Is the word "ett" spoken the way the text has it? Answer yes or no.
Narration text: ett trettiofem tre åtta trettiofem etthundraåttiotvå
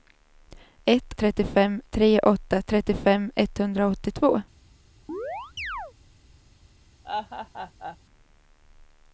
yes